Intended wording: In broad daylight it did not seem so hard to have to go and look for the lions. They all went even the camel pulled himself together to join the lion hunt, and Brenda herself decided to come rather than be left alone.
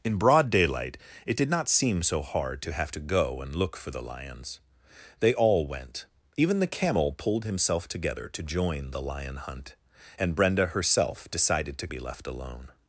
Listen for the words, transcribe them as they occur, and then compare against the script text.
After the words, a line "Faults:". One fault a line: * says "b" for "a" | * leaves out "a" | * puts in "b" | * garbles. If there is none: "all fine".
In broad daylight it did not seem so hard to have to go and look for the lions. They all went even the camel pulled himself together to join the lion hunt, and Brenda herself decided to be left alone.
Faults:
* leaves out "come rather than"